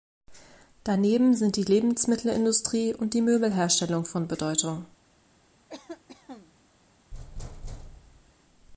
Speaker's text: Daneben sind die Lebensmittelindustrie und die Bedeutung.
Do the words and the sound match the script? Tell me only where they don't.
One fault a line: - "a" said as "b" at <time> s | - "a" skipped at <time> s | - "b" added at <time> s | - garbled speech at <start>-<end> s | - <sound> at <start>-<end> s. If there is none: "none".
- "Möbelherstellung von" added at 3.2 s
- cough at 5.7-6.5 s
- thud at 7.1-8.3 s